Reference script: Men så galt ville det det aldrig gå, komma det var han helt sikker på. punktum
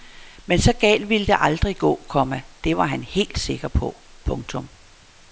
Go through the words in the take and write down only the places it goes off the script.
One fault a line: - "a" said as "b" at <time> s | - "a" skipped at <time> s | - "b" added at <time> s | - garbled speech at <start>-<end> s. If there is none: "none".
- "det" skipped at 1.4 s